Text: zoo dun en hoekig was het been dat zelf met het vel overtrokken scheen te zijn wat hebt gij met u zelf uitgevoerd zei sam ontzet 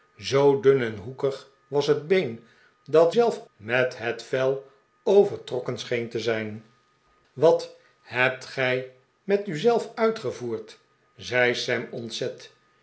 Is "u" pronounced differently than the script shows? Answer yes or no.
no